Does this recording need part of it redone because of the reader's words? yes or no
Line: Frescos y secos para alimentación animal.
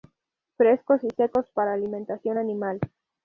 no